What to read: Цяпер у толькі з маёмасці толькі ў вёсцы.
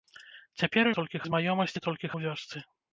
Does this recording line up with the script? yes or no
yes